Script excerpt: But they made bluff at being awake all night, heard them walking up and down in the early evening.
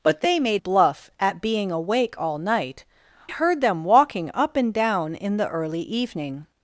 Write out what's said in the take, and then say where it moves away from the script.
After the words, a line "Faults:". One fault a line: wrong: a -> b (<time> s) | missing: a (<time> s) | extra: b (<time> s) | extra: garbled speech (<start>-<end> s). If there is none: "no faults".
But they made bluff at being awake all night, heard them walking up and down in the early evening.
Faults:
no faults